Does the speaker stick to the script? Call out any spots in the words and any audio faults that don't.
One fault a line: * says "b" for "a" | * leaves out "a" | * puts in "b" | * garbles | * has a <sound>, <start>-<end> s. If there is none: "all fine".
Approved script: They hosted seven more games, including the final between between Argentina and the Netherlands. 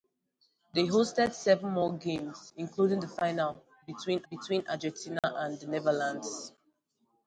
* has a dropout, 5.2-5.2 s